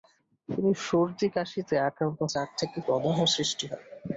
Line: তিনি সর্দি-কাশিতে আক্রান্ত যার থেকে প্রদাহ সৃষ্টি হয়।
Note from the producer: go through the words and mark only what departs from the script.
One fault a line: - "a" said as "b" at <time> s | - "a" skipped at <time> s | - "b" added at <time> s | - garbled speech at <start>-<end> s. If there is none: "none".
none